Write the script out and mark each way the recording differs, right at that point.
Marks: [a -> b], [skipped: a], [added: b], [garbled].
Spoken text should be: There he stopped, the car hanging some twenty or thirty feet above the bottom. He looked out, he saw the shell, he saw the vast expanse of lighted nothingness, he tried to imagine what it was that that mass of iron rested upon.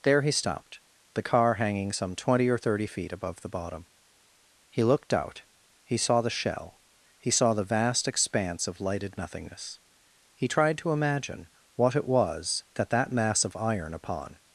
There he stopped, the car hanging some twenty or thirty feet above the bottom. He looked out, he saw the shell, he saw the vast expanse of lighted nothingness, he tried to imagine what it was that that mass of iron [skipped: rested] upon.